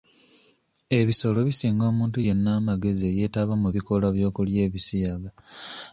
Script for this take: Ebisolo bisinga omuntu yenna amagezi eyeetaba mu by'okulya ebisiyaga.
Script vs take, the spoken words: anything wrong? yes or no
yes